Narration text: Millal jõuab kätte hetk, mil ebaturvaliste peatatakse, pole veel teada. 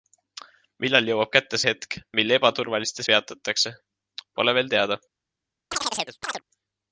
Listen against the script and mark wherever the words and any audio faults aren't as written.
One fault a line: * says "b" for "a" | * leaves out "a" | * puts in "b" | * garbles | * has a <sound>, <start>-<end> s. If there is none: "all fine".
* has a chirp, 5.7-6.4 s